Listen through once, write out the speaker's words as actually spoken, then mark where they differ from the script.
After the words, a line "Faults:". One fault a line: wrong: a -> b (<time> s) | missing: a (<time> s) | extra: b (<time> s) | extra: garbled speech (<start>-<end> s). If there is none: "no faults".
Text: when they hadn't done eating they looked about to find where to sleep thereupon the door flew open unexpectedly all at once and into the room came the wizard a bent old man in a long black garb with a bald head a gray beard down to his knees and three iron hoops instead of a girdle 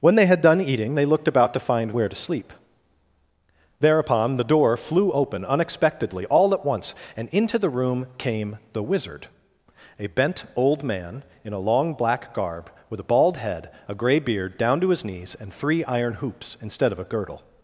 when they had done eating they looked about to find where to sleep thereupon the door flew open unexpectedly all at once and into the room came the wizard a bent old man in a long black garb with a bald head a gray beard down to his knees and three iron hoops instead of a girdle
Faults:
wrong: hadn't -> had (0.2 s)